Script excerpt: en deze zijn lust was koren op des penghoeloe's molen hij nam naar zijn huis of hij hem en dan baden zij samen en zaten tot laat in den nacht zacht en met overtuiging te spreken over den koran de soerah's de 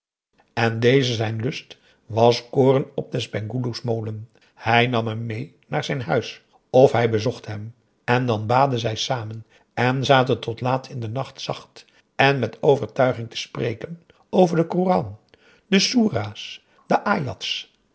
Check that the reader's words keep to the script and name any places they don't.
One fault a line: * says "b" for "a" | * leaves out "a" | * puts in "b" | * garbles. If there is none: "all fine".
* puts in "hem mee"
* puts in "bezocht"